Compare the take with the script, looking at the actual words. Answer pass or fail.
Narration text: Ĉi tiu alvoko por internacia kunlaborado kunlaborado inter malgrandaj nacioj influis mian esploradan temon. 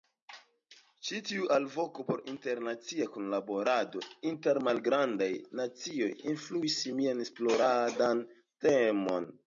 fail